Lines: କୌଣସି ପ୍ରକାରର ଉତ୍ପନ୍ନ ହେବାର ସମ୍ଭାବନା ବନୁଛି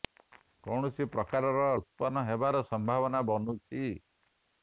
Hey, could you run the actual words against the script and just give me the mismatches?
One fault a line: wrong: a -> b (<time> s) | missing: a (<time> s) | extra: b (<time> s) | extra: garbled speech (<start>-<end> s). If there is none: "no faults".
no faults